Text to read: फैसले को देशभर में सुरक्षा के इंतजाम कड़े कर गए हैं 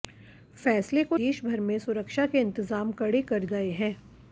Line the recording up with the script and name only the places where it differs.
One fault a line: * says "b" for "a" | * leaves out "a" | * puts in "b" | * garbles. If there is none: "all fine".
all fine